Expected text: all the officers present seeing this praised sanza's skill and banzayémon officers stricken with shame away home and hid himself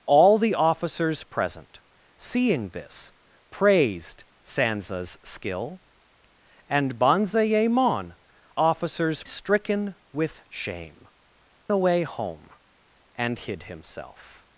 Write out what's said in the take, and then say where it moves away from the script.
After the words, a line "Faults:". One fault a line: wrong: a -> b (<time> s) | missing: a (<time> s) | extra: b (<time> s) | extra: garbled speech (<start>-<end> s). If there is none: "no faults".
all the officers present seeing this praised sanza's skill and banzayémon officers stricken with shame away home and hid himself
Faults:
no faults